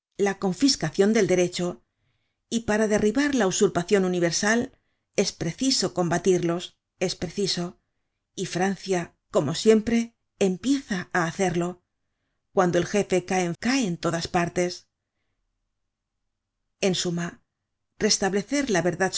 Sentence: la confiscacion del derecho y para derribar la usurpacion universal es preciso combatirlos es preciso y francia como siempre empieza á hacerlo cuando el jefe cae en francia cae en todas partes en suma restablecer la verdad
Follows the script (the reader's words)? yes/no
no